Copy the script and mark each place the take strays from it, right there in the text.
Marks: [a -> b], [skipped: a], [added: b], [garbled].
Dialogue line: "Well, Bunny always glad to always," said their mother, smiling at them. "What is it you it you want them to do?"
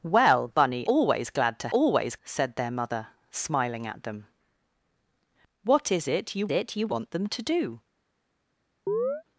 "Well, Bunny always glad to always," said their mother, smiling at them. "What is it you it you want them to do?"